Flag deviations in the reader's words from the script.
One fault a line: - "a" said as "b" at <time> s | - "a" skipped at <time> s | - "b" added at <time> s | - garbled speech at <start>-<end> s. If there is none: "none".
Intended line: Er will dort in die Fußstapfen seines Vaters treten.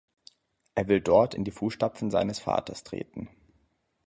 none